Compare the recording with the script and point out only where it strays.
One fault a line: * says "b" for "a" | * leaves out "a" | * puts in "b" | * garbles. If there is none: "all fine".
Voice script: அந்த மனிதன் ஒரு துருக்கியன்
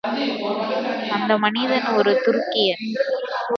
all fine